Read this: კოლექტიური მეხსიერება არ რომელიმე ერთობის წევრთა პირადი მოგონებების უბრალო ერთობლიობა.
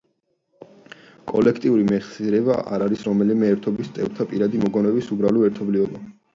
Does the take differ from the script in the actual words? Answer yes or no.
yes